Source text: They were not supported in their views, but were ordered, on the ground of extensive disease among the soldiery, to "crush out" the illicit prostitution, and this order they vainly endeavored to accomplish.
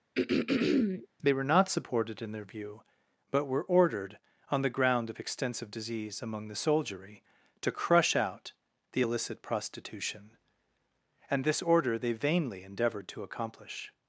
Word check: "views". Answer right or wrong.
wrong